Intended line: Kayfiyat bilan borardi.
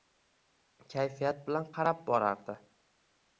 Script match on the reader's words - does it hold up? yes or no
no